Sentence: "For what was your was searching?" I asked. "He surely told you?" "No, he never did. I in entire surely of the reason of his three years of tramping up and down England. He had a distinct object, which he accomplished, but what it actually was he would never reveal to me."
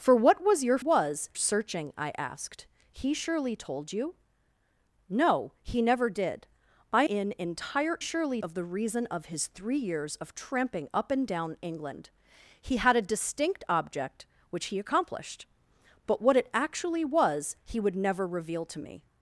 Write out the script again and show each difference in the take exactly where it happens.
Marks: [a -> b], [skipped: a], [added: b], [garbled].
"For what was your was searching?" I asked. "He surely told you?" "No, he never did. I in entire surely of the reason of his three years of tramping up and down England. He had a distinct object, which he accomplished, but what it actually was he would never reveal to me."